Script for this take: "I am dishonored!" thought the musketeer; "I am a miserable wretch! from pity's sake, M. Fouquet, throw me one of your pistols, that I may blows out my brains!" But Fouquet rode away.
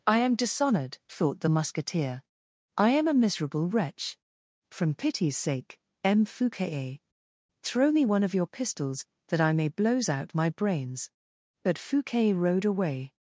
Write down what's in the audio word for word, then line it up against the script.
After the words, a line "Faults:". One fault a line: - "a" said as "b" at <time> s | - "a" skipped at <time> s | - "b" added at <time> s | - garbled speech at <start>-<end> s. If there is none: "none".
"I am dishonored!" thought the musketeer; "I am a miserable wretch! from pity's sake, M. Fouquet, throw me one of your pistols, that I may blows out my brains!" But Fouquet rode away.
Faults:
none